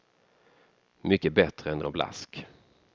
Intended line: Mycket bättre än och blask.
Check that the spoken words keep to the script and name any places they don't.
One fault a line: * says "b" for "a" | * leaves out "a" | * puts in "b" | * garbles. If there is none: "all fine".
all fine